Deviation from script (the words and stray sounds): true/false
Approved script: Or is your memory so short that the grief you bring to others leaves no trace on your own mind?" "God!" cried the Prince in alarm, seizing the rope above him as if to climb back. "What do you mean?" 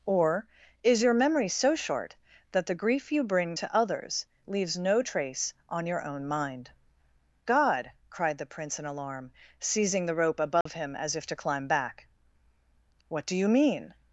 true